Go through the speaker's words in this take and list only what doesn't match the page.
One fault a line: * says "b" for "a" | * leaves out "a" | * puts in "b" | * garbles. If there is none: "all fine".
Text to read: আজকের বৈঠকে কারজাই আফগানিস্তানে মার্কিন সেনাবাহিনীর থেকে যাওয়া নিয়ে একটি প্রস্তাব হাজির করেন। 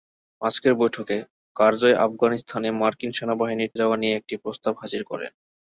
* leaves out "থেকে"